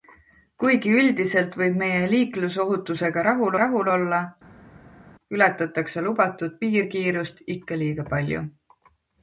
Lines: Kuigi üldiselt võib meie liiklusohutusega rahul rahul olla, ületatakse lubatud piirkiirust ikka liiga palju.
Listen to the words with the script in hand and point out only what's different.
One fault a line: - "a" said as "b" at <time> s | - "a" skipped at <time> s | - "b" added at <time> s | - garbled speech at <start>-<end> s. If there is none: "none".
none